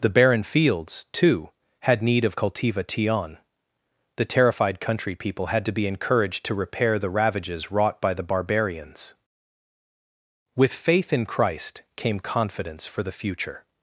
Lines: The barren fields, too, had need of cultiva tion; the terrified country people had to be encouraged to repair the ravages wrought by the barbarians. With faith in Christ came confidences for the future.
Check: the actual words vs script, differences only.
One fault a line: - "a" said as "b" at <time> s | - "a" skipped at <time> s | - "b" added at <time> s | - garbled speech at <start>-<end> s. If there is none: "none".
- "confidences" said as "confidence" at 12.2 s